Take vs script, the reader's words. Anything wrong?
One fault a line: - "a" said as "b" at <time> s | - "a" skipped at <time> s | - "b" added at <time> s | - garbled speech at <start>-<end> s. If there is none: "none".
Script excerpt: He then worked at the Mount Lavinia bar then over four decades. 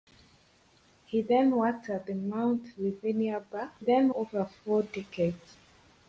none